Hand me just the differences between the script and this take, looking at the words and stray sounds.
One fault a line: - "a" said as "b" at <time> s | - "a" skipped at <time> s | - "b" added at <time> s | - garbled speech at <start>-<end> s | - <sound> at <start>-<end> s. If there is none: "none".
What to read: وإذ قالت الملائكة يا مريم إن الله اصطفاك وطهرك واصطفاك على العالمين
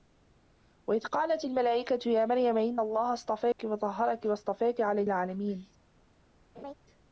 - dropout at 3.5-3.6 s
- laugh at 6.5-6.7 s